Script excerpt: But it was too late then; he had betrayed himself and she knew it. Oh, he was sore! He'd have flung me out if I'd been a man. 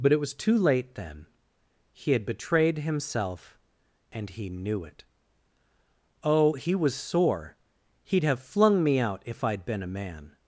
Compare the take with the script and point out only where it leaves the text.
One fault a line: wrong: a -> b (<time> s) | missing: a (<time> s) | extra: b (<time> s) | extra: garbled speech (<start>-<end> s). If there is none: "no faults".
wrong: she -> he (4.3 s)